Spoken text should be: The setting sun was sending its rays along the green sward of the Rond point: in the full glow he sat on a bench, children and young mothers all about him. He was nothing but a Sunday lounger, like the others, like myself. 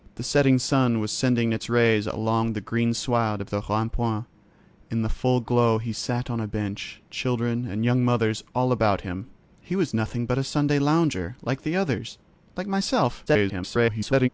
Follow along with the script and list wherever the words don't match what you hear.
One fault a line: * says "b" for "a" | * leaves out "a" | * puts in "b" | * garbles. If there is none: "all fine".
* garbles